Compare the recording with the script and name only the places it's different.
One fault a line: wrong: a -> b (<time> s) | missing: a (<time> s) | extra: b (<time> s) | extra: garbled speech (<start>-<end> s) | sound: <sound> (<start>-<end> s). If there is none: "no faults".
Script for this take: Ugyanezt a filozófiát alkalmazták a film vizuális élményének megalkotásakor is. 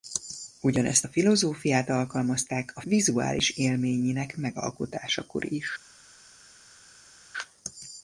missing: film (2.8 s)